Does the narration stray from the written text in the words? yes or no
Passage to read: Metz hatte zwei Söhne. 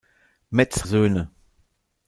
yes